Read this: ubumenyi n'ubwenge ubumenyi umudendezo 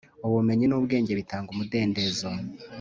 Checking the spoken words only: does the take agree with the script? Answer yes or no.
no